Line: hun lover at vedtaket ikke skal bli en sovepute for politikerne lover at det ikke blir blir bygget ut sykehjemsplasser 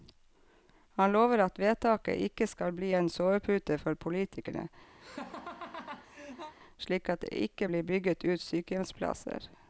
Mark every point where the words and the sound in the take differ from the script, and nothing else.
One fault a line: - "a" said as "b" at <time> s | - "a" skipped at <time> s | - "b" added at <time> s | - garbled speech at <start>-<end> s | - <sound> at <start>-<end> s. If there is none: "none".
- "hun" said as "han" at 1.0 s
- laugh at 5.0-6.5 s
- "lover" said as "slik" at 6.8 s
- "blir" skipped at 7.8 s